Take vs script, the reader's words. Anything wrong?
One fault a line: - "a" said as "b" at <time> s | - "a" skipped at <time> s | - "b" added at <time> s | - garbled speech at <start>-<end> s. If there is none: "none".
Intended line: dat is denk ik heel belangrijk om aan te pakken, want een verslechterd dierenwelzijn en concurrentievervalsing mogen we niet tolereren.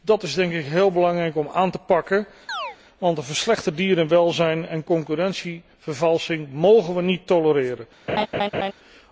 none